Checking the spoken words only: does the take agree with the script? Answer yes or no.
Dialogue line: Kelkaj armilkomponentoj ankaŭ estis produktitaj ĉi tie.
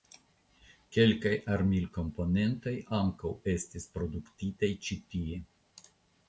yes